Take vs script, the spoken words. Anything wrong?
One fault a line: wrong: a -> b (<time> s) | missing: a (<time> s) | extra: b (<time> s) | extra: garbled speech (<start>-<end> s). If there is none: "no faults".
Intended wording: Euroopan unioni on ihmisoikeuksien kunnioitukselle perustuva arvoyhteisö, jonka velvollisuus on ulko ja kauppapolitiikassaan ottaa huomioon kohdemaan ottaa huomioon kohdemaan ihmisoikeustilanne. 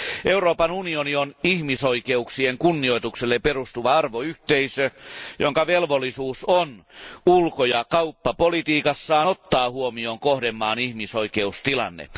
missing: ottaa huomioon kohdemaan (10.8 s)